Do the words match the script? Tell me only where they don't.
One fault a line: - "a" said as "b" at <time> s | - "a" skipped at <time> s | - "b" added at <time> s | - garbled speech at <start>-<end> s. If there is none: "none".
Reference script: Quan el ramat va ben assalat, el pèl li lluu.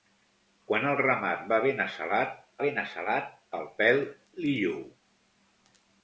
- "ben assalat" added at 2.7 s